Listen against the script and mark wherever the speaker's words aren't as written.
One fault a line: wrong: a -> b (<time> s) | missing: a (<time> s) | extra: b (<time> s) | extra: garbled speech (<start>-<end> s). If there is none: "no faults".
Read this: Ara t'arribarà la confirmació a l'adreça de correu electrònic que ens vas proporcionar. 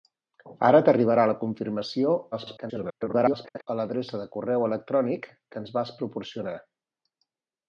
extra: garbled speech (2.3-3.7 s)